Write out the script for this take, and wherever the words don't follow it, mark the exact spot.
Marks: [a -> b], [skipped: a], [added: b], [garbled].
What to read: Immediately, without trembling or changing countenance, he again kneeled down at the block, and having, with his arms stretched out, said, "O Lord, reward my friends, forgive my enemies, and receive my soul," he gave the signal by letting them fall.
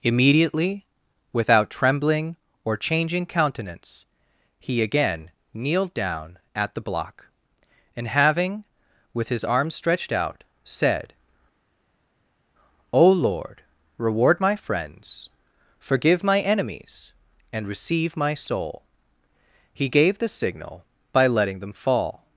Immediately, without trembling or changing countenance, he again kneeled down at the block, and having, with his arms stretched out, said, "O Lord, reward my friends, forgive my enemies, and receive my soul," he gave the signal by letting them fall.